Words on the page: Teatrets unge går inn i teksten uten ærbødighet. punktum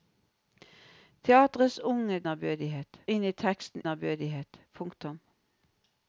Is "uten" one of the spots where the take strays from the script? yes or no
yes